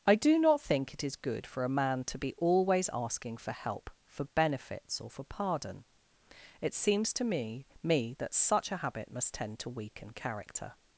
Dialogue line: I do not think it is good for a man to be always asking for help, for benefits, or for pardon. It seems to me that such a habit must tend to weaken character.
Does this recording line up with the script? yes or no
no